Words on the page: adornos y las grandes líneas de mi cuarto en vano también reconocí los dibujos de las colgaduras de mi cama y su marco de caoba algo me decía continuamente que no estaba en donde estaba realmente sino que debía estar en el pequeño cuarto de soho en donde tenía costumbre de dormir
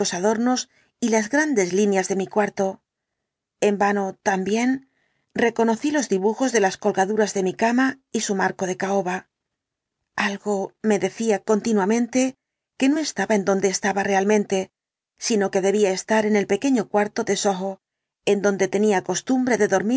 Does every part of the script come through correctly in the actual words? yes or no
yes